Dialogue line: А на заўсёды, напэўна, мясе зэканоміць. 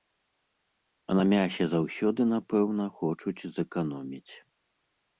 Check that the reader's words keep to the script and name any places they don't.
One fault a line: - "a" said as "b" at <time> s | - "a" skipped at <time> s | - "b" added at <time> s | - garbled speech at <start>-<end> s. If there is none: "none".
- "мясе" added at 1.3 s
- "мясе" said as "хочуць" at 3.0 s